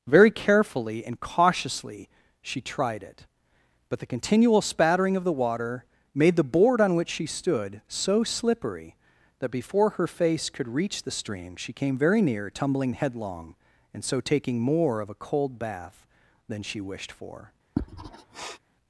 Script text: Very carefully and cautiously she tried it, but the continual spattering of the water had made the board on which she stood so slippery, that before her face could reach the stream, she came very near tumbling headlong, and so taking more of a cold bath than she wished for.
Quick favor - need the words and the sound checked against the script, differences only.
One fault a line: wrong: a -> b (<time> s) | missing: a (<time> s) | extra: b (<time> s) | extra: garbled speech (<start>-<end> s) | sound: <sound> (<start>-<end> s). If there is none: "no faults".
missing: had (5.8 s)
sound: sniff (17.8-18.6 s)